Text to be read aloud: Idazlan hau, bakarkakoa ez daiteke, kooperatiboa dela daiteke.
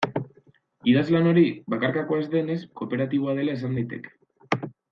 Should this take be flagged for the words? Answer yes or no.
yes